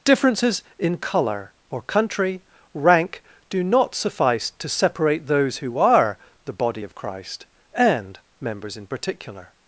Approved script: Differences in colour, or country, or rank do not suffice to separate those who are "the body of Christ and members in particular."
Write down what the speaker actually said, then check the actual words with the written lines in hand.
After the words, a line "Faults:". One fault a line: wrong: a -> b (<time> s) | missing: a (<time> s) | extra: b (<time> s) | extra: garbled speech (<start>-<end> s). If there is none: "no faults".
Differences in colour, or country, rank do not suffice to separate those who are "the body of Christ and members in particular."
Faults:
missing: or (2.4 s)